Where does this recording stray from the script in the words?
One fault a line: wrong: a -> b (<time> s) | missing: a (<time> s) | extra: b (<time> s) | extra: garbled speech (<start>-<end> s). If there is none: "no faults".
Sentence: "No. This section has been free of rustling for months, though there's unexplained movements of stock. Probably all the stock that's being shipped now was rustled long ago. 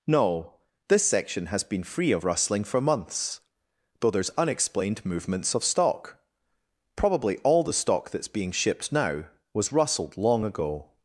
no faults